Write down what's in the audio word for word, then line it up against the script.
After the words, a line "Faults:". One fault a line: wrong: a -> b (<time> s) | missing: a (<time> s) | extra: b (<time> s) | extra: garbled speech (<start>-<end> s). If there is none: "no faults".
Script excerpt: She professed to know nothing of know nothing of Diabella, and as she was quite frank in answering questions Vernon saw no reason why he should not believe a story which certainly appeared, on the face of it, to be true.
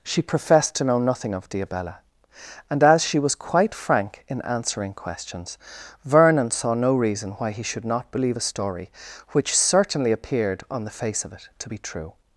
She professed to know nothing of Diabella, and as she was quite frank in answering questions Vernon saw no reason why he should not believe a story which certainly appeared, on the face of it, to be true.
Faults:
missing: know nothing of (1.5 s)